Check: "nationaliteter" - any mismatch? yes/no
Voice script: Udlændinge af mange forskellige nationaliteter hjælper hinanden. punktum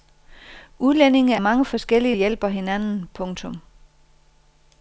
yes